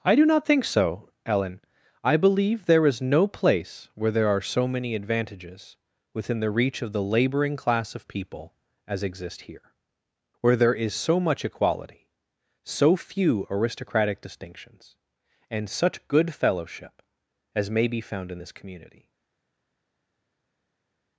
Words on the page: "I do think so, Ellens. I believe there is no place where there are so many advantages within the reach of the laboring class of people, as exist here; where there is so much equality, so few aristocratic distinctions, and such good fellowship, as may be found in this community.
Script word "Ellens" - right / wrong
wrong